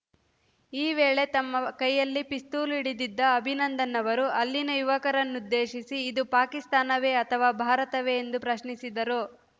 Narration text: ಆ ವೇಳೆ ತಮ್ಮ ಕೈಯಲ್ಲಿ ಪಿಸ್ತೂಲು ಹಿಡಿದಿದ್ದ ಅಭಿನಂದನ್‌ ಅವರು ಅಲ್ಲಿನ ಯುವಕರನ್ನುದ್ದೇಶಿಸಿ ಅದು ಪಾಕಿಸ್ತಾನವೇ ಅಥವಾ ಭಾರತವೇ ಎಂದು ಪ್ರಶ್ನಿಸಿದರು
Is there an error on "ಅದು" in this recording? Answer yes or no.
yes